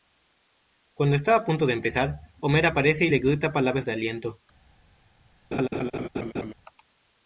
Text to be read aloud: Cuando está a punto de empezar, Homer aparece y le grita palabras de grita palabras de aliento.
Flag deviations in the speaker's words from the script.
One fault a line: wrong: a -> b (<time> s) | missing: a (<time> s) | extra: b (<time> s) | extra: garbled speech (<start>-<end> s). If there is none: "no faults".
missing: grita palabras de (3.9 s)